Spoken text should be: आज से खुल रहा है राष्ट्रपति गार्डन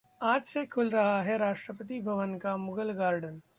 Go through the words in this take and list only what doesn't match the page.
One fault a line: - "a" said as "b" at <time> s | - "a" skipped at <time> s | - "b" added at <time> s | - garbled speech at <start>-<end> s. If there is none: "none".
- "भवन का मुगल" added at 2.0 s